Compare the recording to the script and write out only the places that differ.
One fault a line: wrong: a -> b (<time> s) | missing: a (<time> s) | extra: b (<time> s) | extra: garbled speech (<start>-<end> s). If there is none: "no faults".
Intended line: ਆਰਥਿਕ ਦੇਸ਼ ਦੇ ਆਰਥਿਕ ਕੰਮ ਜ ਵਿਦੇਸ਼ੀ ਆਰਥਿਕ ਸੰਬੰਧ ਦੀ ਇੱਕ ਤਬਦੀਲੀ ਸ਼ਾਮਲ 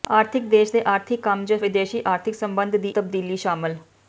missing: ਇੱਕ (2.9 s)